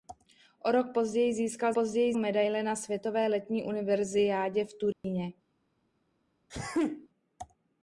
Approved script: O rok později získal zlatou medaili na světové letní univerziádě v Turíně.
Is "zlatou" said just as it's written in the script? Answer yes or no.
no